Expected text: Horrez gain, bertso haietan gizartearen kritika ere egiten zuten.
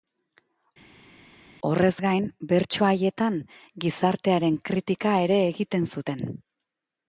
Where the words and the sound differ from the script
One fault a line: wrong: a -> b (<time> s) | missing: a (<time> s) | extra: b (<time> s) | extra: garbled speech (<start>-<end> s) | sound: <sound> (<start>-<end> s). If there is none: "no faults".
no faults